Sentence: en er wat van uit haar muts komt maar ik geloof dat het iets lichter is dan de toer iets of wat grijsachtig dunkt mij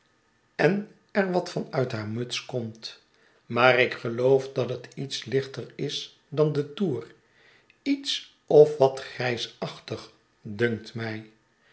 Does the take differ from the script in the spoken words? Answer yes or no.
no